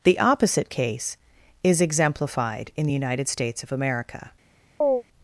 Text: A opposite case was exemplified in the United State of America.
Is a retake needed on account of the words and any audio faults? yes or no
yes